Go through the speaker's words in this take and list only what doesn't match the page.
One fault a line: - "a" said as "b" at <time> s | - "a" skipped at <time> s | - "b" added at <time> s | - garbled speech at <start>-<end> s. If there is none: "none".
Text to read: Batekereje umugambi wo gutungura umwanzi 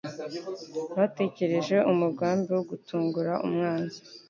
none